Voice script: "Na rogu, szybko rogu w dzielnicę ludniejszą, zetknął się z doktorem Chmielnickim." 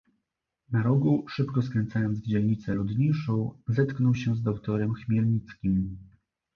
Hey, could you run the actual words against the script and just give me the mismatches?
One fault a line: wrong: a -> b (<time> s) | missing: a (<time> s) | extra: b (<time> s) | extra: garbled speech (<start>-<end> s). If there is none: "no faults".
wrong: rogu -> skręcając (1.6 s)